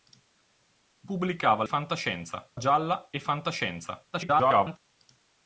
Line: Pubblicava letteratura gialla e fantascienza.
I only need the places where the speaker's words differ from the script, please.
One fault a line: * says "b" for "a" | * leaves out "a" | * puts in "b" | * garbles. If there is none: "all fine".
* says "fantascienza" for "letteratura"
* garbles